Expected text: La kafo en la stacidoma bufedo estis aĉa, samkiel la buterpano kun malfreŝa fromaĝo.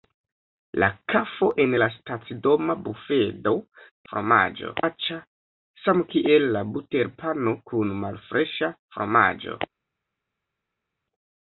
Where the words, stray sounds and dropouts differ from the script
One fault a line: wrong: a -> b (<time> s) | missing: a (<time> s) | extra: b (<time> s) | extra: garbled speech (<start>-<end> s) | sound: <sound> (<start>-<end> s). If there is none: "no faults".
wrong: estis -> fromaĝo (4.1 s)